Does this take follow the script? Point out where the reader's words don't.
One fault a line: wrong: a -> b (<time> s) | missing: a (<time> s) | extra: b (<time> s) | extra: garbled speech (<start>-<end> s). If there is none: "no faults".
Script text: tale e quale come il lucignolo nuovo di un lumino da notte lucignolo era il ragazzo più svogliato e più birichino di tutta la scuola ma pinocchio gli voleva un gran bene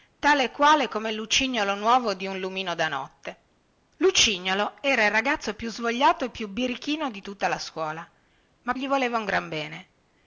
missing: pinocchio (8.7 s)